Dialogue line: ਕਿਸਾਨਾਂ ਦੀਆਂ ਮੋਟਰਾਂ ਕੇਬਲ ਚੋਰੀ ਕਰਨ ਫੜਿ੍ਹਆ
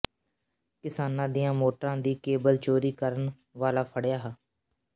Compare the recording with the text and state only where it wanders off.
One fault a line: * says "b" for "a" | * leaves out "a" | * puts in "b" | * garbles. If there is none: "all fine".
* puts in "ਦੀ"
* puts in "ਵਾਲਾ"